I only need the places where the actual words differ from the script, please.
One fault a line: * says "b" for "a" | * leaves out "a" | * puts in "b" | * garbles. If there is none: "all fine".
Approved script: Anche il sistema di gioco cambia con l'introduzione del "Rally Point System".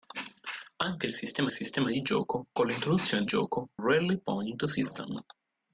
* puts in "sistema"
* leaves out "cambia"
* says "gioco" for "del"